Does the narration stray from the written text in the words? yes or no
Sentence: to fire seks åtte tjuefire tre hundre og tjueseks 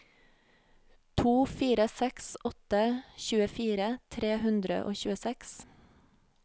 no